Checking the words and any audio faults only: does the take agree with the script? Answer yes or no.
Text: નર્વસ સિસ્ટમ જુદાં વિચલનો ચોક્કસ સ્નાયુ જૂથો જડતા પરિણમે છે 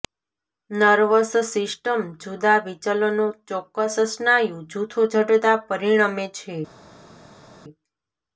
yes